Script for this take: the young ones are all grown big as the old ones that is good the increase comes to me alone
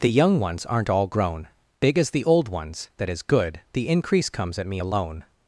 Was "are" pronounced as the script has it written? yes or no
no